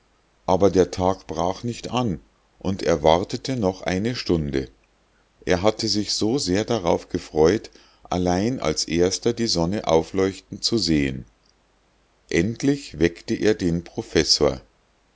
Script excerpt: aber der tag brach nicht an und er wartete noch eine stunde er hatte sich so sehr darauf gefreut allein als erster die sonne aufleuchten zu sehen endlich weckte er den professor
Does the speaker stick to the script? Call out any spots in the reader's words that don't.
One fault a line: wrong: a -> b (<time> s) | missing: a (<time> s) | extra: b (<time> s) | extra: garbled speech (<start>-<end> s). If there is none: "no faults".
no faults